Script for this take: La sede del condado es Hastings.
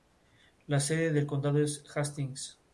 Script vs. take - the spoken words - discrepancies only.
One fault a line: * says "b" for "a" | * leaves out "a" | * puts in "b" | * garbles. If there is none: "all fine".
all fine